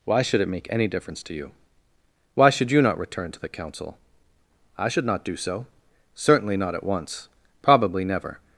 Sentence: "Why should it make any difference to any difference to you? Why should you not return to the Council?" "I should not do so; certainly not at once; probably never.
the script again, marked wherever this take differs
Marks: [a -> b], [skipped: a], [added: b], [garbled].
"Why should it make any difference to [skipped: any difference to] you? Why should you not return to the Council?" "I should not do so; certainly not at once; probably never.